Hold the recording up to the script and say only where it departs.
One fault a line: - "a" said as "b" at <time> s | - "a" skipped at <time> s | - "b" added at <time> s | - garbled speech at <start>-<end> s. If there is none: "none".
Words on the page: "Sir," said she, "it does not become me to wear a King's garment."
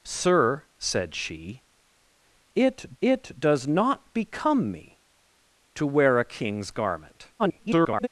- "it" added at 3.0 s
- garbled speech at 7.4-8.1 s